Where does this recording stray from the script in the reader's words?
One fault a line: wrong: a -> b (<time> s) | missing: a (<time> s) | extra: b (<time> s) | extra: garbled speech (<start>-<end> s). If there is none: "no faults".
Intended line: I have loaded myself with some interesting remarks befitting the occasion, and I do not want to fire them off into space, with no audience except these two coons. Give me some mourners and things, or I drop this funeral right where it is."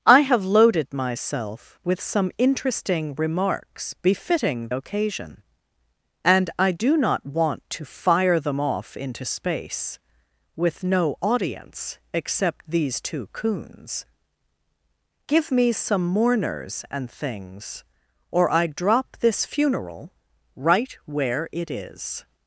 missing: the (4.7 s)